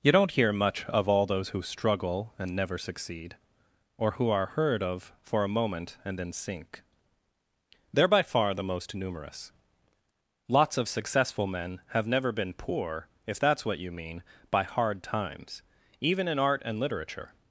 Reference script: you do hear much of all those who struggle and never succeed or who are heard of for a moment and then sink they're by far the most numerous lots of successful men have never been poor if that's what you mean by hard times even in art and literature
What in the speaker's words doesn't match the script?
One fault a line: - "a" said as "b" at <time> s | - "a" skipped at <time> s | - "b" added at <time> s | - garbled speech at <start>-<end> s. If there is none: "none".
- "do" said as "don't" at 0.1 s